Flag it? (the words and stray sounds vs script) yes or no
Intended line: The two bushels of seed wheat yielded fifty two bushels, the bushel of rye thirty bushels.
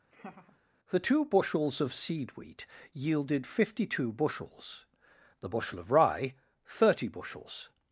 yes